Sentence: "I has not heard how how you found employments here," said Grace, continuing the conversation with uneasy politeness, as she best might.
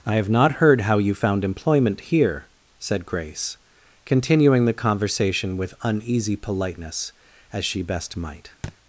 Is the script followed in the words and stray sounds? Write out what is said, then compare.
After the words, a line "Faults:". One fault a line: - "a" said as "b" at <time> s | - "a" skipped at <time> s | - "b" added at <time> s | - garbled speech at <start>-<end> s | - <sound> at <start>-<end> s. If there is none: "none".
"I have not heard how you found employment here," said Grace, continuing the conversation with uneasy politeness, as she best might.
Faults:
- "has" said as "have" at 0.1 s
- "how" skipped at 1.0 s
- "employments" said as "employment" at 1.4 s
- thud at 8.6-8.8 s